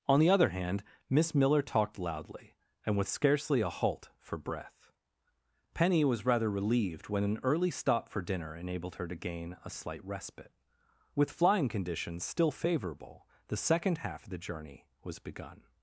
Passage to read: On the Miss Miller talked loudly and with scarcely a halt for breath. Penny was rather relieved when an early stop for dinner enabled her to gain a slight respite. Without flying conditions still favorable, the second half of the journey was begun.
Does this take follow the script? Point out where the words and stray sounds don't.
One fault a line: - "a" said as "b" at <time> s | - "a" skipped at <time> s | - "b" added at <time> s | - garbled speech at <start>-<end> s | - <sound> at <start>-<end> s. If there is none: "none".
- "other hand" added at 0.3 s
- "Without" said as "With" at 11.1 s